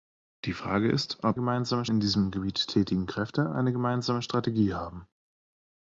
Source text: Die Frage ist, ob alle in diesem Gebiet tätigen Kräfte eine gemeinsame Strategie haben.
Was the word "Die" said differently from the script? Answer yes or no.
no